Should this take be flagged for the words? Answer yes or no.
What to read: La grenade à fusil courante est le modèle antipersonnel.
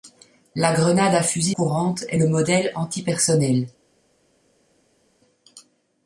no